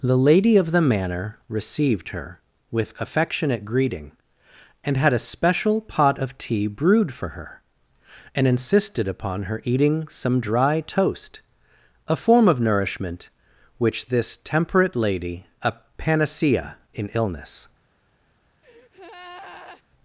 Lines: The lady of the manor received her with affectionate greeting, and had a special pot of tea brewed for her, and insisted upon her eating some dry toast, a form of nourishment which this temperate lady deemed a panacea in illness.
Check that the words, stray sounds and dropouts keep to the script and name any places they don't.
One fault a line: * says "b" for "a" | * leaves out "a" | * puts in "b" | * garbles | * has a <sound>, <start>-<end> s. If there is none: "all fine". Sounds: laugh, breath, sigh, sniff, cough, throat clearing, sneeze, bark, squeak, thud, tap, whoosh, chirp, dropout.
* leaves out "deemed"
* has a breath, 18.6-19.8 s